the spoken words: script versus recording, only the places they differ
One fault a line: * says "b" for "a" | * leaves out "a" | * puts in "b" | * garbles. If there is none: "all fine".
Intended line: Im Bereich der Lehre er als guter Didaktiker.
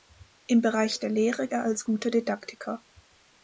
all fine